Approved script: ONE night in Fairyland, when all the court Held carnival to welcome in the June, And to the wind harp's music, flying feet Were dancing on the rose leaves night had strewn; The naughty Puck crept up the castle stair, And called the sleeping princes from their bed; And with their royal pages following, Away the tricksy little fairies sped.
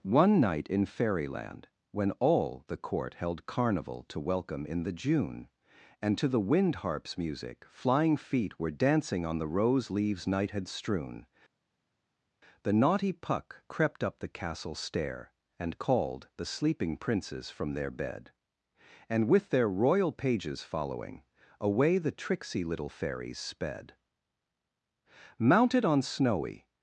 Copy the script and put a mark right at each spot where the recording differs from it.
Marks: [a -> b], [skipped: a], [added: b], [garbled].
ONE night in Fairyland, when all the court Held carnival to welcome in the June, And to the wind harp's music, flying feet Were dancing on the rose leaves night had strewn; The naughty Puck crept up the castle stair, And called the sleeping princes from their bed; And with their royal pages following, Away the tricksy little fairies sped. [added: Mounted on snowy]